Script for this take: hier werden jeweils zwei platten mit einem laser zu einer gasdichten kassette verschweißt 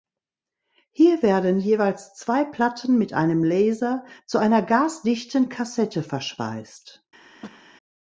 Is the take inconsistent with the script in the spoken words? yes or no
no